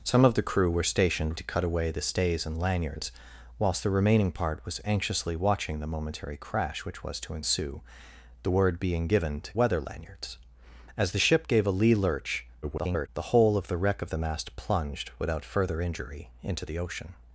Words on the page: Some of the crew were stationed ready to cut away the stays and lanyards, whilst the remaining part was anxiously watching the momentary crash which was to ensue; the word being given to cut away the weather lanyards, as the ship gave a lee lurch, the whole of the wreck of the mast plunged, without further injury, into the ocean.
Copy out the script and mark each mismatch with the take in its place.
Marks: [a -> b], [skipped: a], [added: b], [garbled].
Some of the crew were stationed [skipped: ready] to cut away the stays and lanyards, whilst the remaining part was anxiously watching the momentary crash which was to ensue; the word being given to [skipped: cut away the] weather lanyards, as the ship gave a lee lurch, [garbled] the whole of the wreck of the mast plunged, without further injury, into the ocean.